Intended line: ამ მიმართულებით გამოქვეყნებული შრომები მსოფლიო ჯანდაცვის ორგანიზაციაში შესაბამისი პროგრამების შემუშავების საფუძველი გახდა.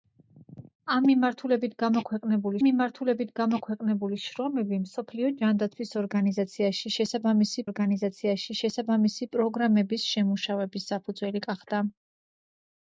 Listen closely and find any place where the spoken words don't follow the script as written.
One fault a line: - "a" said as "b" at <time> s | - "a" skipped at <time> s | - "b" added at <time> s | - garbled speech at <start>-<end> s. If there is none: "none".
- "მიმართულებით გამოქვეყნებული" added at 2.6 s
- "ორგანიზაციაში შესაბამისი" added at 7.7 s